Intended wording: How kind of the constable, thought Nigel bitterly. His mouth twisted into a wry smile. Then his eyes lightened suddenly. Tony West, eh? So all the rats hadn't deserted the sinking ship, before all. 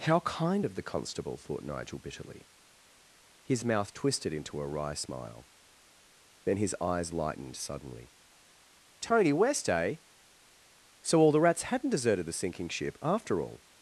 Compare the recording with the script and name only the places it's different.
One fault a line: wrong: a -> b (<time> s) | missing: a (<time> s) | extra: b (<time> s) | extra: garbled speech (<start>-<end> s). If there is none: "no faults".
wrong: before -> after (13.0 s)